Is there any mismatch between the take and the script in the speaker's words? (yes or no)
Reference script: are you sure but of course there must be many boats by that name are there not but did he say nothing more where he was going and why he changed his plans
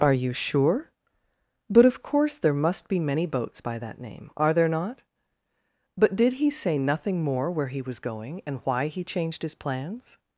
no